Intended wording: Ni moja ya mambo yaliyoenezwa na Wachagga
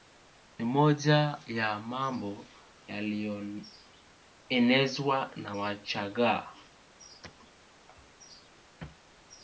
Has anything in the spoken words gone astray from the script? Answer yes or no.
no